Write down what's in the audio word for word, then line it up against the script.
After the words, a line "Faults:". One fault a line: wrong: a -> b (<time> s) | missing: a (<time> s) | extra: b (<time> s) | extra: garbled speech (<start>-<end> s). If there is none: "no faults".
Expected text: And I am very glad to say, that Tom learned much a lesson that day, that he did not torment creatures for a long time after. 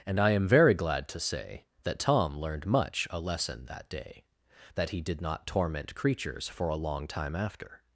And I am very glad to say, that Tom learned much a lesson that day, that he did not torment creatures for a long time after.
Faults:
no faults